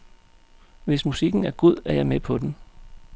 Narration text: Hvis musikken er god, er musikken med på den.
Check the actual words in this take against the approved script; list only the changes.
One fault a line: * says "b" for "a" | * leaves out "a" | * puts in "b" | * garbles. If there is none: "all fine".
* says "jeg" for "musikken"